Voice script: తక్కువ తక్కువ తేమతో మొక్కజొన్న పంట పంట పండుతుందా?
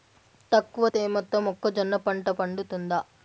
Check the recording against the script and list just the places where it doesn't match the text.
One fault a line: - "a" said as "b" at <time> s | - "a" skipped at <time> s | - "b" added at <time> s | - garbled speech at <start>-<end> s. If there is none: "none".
- "తక్కువ" skipped at 0.9 s
- "పంట" skipped at 2.3 s